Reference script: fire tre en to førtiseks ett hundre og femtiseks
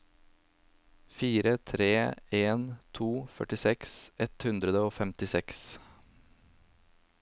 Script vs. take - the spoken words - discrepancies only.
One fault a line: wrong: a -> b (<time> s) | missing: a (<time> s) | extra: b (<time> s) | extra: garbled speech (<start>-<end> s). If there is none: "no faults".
no faults